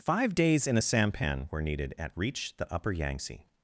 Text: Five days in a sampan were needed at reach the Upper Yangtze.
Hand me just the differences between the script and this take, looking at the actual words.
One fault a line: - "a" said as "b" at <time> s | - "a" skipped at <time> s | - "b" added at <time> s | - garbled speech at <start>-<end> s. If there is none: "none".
none